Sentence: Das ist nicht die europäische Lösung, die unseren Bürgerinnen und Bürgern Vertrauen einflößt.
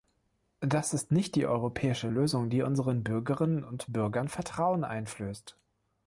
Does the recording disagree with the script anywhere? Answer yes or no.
no